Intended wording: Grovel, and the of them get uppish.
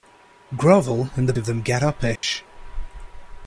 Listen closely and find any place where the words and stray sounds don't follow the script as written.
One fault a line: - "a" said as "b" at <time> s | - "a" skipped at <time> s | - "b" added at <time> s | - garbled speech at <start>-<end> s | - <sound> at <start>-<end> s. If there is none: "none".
- dropout at 2.2-2.2 s